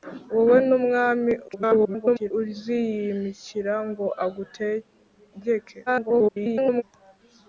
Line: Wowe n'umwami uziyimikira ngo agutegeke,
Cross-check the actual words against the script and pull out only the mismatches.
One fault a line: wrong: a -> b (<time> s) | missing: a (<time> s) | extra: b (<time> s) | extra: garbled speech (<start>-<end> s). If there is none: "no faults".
extra: garbled speech (1.5-2.3 s)
extra: garbled speech (5.9-6.8 s)